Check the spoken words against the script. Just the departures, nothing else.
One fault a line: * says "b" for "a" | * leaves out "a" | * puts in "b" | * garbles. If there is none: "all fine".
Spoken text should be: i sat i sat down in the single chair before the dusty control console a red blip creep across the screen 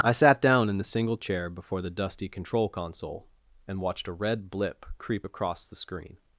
* leaves out "i sat"
* puts in "and watched"